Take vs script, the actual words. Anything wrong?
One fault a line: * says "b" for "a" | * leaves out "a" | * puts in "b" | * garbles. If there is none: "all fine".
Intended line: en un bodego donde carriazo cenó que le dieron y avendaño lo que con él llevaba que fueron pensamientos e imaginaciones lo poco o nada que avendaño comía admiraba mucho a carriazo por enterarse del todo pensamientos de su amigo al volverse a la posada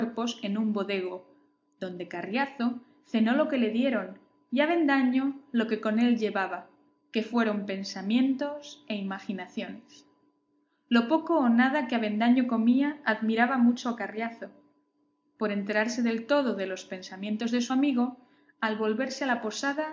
* puts in "lo"
* puts in "de los"